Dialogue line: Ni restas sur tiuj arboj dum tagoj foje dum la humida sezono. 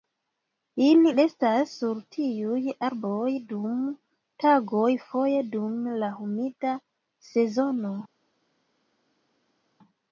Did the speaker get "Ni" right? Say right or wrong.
wrong